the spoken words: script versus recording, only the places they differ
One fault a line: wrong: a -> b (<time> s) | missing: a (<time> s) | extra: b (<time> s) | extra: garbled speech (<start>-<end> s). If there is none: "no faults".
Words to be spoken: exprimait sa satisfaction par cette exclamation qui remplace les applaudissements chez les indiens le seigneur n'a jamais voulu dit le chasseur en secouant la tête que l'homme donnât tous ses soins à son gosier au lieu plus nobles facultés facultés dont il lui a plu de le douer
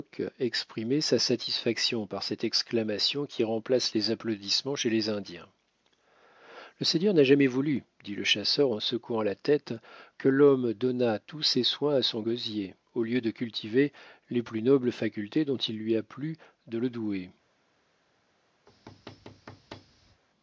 extra: de cultiver les (13.2 s)
missing: facultés (15.4 s)